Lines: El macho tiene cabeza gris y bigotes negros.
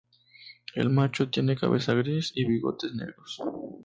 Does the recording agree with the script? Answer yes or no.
yes